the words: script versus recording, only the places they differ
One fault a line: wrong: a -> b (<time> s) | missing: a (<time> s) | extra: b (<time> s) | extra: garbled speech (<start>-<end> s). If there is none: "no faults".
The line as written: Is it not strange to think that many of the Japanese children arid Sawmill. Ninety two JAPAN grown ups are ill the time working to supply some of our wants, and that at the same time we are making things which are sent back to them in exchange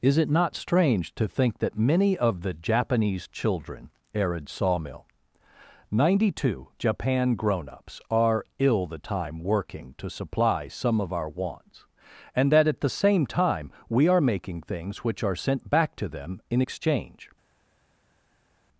no faults